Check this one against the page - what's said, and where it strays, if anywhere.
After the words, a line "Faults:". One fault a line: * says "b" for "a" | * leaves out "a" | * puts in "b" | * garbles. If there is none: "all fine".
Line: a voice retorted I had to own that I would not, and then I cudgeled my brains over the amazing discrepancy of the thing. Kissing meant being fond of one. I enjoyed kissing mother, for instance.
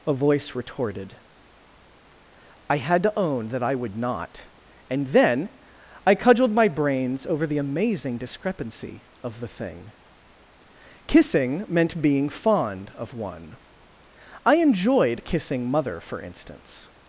a voice retorted I had to own that I would not, and then I cudgeled my brains over the amazing discrepancy of the thing. Kissing meant being fond of one. I enjoyed kissing mother, for instance.
Faults:
all fine